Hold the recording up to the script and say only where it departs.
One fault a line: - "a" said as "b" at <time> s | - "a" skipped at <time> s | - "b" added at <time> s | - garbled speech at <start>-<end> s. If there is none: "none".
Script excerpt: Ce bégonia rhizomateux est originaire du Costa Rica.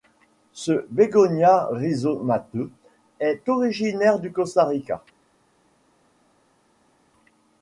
none